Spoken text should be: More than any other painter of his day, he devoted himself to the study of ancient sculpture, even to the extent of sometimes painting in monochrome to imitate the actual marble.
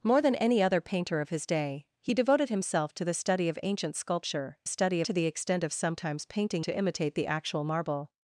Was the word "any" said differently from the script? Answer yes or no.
no